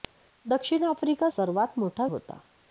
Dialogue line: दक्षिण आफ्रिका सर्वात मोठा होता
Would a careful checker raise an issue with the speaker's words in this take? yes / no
no